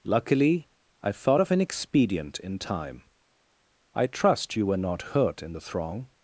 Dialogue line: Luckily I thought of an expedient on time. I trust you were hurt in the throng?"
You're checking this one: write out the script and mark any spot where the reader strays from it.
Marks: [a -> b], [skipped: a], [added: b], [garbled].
Luckily I thought of an expedient [on -> in] time. I trust you were [added: not] hurt in the throng?"